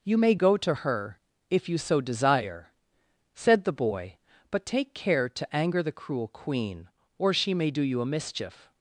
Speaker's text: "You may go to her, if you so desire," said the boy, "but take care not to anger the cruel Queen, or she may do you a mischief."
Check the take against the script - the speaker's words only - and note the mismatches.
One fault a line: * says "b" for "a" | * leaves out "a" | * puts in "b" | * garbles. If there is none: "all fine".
* leaves out "not"